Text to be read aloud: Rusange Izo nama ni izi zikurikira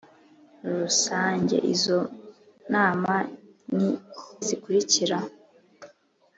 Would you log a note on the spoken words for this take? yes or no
yes